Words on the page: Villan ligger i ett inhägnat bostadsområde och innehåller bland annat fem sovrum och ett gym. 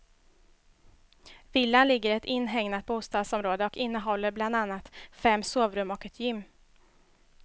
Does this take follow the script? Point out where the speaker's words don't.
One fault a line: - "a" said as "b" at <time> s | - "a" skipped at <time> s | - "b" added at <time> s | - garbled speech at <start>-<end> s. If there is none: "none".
none